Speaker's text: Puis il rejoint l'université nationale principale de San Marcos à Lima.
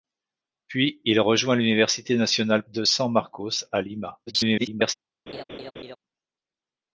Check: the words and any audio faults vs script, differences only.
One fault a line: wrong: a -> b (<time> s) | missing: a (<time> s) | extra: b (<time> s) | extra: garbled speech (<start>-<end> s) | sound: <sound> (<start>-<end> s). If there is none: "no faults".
missing: principale (2.6 s)
extra: garbled speech (4.3-4.9 s)
sound: laugh (5.3-6.0 s)